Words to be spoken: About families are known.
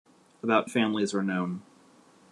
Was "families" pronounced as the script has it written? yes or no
yes